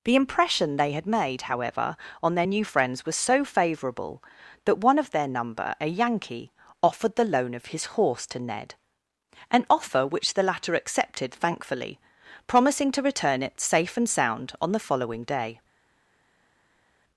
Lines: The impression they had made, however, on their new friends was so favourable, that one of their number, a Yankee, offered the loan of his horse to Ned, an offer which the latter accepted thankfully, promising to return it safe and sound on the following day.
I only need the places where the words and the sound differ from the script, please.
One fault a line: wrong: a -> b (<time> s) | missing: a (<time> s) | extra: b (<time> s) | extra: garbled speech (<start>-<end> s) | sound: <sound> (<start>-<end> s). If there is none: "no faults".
no faults